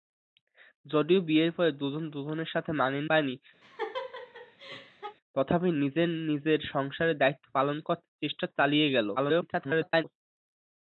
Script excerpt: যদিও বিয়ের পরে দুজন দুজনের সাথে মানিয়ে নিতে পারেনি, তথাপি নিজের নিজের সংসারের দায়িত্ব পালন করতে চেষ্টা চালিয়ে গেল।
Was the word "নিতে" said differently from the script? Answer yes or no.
yes